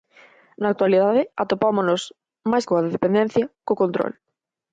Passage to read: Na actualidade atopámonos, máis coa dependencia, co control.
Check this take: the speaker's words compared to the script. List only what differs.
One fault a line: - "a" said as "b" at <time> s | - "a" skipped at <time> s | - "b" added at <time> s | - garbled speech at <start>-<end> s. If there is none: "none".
none